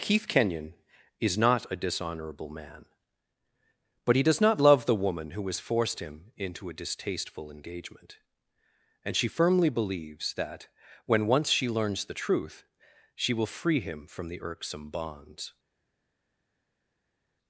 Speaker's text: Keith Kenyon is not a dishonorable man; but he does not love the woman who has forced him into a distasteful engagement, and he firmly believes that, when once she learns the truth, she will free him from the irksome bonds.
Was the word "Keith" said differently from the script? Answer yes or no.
no